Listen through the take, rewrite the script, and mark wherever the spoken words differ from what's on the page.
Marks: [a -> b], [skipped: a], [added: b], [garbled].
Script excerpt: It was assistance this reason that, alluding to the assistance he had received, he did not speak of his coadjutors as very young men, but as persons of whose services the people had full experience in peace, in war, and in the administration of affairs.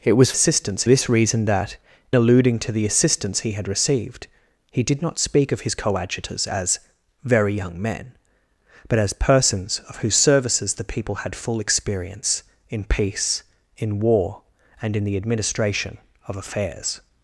It was assistance this reason that, alluding to the assistance he had received, he did not speak of his coadjutors as very young men, but as persons of whose services the people had full experience in peace, in war, and in the administration of affairs.